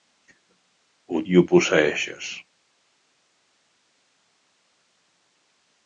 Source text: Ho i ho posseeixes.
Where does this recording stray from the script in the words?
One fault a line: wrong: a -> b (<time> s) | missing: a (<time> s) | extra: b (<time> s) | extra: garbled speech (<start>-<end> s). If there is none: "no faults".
no faults